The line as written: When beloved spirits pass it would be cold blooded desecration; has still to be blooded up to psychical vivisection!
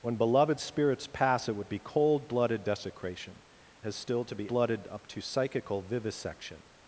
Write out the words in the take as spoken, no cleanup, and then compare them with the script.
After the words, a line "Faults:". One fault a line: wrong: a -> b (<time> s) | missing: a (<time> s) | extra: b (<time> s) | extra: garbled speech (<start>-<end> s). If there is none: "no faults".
When beloved spirits pass it would be cold blooded desecration; has still to be blooded up to psychical vivisection!
Faults:
no faults